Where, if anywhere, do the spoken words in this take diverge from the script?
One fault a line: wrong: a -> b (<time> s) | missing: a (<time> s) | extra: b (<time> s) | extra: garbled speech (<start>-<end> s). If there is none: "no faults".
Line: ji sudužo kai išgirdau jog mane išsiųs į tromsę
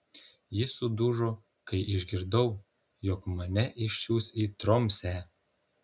no faults